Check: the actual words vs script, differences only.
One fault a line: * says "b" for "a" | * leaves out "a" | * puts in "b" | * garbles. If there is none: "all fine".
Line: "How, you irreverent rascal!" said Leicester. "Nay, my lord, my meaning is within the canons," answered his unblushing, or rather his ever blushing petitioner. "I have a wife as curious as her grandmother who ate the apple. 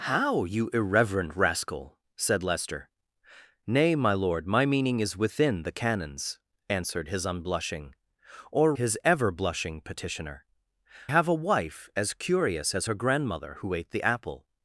* leaves out "rather"
* leaves out "I"